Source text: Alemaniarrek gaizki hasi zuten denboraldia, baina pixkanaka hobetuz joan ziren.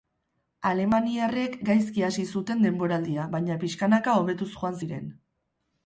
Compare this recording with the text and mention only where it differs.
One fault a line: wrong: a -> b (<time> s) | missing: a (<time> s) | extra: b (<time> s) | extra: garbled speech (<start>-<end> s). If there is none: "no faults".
no faults